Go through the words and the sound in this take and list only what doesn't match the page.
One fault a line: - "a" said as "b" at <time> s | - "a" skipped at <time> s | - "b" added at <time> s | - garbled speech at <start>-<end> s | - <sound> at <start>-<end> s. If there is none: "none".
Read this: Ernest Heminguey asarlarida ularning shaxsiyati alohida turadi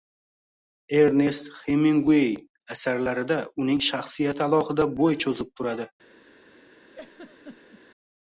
- "ularning" said as "uning" at 3.6 s
- "bo‘y cho‘zib" added at 5.0 s
- laugh at 6.9-7.8 s